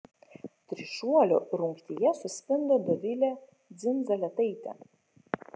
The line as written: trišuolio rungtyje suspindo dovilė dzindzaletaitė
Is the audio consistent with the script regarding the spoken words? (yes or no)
yes